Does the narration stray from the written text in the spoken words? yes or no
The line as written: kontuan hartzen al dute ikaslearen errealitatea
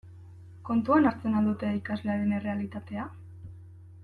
no